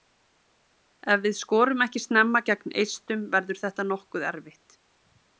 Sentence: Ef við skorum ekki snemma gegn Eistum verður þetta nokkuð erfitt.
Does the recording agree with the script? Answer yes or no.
yes